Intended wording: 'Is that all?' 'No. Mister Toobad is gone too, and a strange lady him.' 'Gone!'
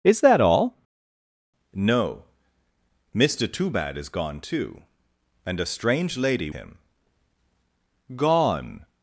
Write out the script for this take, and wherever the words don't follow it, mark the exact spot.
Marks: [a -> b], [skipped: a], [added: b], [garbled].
'Is that all?' 'No. Mister Toobad is gone too, and a strange lady him.' 'Gone!'